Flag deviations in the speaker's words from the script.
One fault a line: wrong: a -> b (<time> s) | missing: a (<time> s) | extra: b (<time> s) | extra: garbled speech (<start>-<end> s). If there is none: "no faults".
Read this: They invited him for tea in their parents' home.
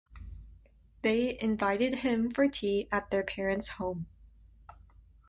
wrong: in -> at (2.9 s)